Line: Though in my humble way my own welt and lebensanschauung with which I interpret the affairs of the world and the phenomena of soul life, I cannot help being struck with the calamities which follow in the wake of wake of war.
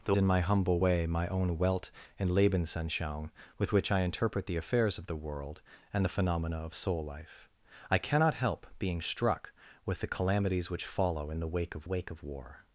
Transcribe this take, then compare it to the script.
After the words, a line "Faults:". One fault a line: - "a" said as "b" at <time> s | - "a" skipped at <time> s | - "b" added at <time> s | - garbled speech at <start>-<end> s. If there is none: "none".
Though in my humble way my own welt and lebensanschauung with which I interpret the affairs of the world and the phenomena of soul life, I cannot help being struck with the calamities which follow in the wake of wake of war.
Faults:
none